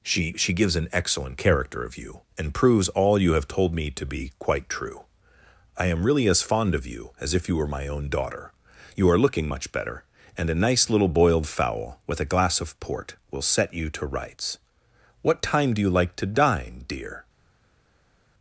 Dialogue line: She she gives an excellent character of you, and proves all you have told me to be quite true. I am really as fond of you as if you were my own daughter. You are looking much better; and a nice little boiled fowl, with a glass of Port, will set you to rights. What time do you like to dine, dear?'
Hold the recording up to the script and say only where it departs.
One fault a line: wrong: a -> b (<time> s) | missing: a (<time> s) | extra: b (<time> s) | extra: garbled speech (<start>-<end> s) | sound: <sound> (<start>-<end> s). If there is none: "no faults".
no faults